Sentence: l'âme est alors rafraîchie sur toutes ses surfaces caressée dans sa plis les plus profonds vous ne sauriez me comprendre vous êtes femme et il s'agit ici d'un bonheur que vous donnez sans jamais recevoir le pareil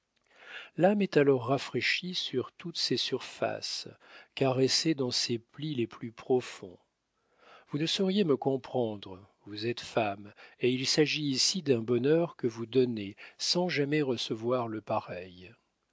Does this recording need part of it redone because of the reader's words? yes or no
yes